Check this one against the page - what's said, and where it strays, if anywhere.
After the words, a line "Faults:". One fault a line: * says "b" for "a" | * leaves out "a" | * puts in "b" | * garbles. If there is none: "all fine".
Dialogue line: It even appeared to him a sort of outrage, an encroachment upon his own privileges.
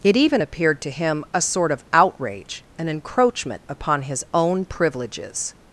It even appeared to him a sort of outrage, an encroachment upon his own privileges.
Faults:
all fine